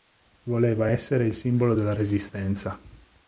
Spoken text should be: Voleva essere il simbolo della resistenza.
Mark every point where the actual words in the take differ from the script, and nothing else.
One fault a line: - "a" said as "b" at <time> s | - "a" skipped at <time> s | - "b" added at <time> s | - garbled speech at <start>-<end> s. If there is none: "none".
none